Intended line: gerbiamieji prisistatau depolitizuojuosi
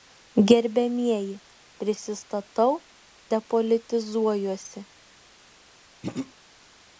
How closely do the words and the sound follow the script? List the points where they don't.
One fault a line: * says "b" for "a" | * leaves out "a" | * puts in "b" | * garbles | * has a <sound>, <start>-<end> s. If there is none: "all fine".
* has a throat clearing, 6.0-6.3 s